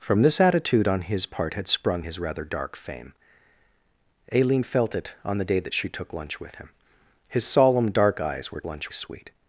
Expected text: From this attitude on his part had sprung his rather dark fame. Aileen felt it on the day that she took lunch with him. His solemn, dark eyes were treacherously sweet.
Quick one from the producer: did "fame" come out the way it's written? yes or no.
yes